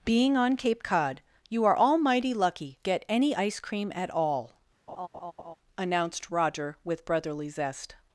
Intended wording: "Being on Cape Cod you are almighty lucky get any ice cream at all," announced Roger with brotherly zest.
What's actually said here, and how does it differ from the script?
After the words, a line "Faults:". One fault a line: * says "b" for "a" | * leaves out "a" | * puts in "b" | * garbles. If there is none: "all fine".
"Being on Cape Cod you are almighty lucky get any ice cream at all," announced Roger with brotherly zest.
Faults:
all fine